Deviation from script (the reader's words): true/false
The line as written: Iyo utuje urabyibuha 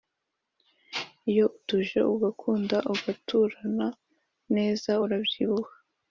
true